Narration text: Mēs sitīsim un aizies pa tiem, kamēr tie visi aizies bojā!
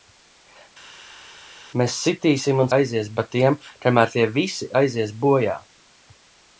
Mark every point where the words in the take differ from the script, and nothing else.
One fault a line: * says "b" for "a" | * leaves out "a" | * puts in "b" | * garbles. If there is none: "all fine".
all fine